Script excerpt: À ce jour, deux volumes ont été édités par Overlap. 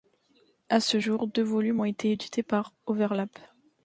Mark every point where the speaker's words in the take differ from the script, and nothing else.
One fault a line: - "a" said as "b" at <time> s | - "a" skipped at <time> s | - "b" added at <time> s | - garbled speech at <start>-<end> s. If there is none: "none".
none